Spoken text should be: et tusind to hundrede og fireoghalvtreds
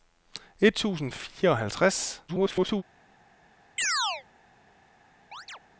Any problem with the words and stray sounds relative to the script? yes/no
yes